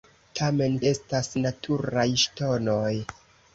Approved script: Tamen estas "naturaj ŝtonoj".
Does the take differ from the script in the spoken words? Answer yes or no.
no